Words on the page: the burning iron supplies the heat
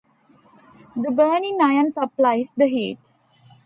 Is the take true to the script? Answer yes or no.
yes